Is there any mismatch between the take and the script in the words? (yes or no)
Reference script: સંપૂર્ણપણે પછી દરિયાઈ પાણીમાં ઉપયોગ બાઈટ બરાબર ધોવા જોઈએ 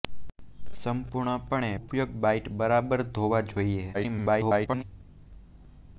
yes